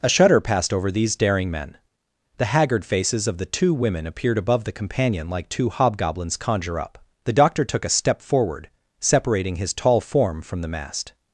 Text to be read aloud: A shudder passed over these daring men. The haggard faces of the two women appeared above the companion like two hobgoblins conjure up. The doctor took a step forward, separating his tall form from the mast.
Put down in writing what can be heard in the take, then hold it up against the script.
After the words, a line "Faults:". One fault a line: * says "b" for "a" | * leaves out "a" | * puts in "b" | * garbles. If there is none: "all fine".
A shudder passed over these daring men. The haggard faces of the two women appeared above the companion like two hobgoblins conjure up. The doctor took a step forward, separating his tall form from the mast.
Faults:
all fine